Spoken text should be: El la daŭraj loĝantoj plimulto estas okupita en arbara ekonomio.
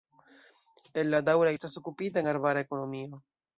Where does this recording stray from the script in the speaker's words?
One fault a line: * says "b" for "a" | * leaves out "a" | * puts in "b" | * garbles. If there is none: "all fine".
* leaves out "loĝantoj plimulto"